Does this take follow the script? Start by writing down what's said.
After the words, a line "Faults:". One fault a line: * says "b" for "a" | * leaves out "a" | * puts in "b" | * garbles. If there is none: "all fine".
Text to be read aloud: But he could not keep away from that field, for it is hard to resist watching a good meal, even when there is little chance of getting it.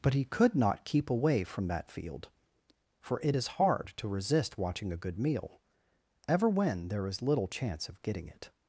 But he could not keep away from that field, for it is hard to resist watching a good meal, ever when there is little chance of getting it.
Faults:
* says "ever" for "even"